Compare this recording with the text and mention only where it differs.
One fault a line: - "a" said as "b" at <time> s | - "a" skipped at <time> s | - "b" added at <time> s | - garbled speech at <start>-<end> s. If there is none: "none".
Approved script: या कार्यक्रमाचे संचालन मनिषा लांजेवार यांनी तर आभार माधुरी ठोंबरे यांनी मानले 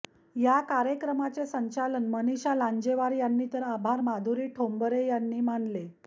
none